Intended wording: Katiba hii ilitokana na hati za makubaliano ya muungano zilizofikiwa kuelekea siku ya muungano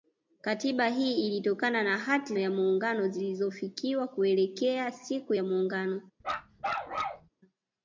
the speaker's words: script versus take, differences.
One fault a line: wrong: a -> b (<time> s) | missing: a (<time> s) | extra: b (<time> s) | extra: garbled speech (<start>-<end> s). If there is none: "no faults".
missing: za makubaliano (2.4 s)